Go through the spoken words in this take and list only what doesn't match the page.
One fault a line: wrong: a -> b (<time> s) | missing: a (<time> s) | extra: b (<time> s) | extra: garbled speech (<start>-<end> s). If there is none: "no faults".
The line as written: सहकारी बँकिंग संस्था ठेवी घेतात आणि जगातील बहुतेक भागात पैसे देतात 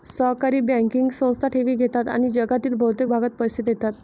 no faults